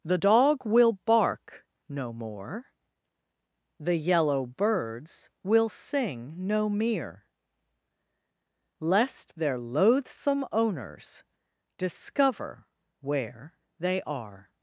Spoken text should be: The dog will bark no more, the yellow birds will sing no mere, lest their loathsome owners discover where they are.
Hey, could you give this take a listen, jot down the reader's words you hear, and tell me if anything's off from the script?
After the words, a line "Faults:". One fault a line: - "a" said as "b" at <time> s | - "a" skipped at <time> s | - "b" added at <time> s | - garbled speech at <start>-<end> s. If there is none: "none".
The dog will bark no more, the yellow birds will sing no mere, lest their loathsome owners discover where they are.
Faults:
none